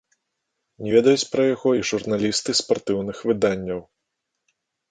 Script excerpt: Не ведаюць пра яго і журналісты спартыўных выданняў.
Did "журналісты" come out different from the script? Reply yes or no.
no